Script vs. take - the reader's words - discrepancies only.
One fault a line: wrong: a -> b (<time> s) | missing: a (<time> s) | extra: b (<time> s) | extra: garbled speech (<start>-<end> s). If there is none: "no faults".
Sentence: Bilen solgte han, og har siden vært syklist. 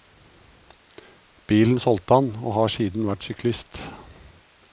no faults